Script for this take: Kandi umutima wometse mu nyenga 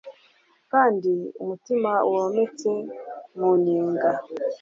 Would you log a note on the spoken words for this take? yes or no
no